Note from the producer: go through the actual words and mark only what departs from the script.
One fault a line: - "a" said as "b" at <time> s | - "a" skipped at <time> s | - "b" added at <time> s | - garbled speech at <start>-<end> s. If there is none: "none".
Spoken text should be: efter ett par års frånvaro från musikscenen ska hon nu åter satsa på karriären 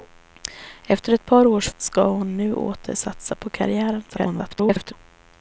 - "frånvaro från musikscenen" skipped at 1.7 s
- garbled speech at 4.1-4.9 s